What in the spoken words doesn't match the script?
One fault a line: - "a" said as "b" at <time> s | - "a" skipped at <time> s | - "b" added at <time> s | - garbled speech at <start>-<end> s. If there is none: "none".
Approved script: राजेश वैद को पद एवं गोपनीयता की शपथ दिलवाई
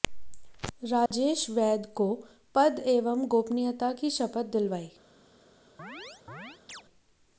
none